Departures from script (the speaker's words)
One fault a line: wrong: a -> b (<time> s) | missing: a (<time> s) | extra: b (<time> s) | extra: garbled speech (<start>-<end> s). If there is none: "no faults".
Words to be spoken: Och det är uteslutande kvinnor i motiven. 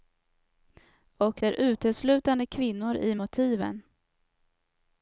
missing: det (1.4 s)